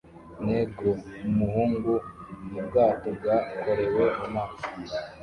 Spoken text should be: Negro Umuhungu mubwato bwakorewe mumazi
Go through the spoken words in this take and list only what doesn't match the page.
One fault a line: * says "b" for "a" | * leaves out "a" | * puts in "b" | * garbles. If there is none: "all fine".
all fine